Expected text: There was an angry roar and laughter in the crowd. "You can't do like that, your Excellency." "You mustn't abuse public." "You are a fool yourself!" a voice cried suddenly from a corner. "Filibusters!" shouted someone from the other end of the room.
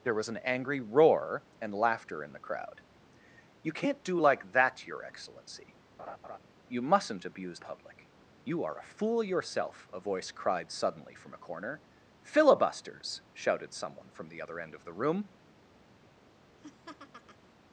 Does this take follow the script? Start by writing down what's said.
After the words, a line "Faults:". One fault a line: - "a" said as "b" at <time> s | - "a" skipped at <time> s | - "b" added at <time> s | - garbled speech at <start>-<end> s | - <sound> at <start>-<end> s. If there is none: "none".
There was an angry roar and laughter in the crowd. "You can't do like that, your Excellency." "You mustn't abuse public." "You are a fool yourself!" a voice cried suddenly from a corner. "Filibusters!" shouted someone from the other end of the room.
Faults:
- laugh at 6.0-6.4 s
- laugh at 16.6-17.5 s